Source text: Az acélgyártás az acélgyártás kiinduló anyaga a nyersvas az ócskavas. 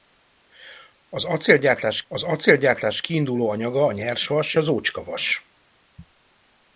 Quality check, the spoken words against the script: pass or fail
pass